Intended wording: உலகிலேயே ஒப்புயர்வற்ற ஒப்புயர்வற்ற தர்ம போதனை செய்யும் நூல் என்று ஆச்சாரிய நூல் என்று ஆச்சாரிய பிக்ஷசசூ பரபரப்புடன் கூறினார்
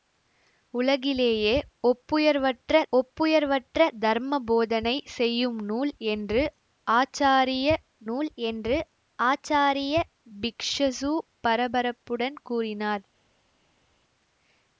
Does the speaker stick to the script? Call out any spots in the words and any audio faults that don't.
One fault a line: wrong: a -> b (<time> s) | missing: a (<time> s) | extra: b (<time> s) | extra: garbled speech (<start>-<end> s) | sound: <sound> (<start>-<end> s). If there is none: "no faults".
no faults